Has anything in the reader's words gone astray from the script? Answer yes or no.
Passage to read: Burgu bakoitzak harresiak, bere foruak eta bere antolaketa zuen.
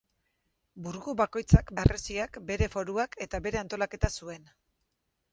no